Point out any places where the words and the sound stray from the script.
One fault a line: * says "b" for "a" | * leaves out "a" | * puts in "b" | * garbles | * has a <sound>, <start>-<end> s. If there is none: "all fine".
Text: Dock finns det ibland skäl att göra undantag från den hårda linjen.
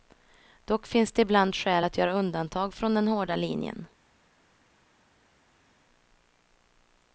all fine